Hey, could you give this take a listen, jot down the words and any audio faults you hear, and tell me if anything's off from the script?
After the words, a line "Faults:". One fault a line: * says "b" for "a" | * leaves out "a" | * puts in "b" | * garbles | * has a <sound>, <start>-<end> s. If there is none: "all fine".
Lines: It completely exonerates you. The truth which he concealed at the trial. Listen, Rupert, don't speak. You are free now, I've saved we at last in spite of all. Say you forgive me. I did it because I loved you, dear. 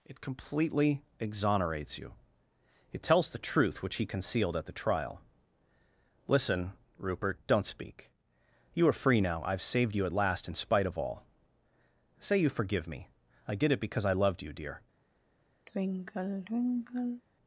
It completely exonerates you. It tells the truth which he concealed at the trial. Listen, Rupert, don't speak. You are free now, I've saved you at last in spite of all. Say you forgive me. I did it because I loved you, dear.
Faults:
* puts in "It tells"
* says "you" for "we"
* has a sigh, 15.7-17.2 s